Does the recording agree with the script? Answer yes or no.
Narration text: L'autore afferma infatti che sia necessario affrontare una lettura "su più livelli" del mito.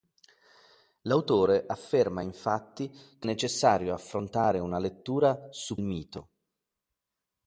no